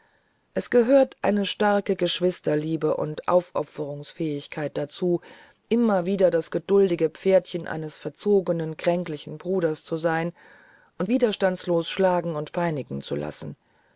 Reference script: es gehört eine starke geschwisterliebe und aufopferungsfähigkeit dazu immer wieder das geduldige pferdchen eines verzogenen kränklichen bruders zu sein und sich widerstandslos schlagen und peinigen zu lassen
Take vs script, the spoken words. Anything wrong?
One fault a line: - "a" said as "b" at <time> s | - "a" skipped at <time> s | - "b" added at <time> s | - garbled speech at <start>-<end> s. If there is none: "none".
- "sich" skipped at 11.1 s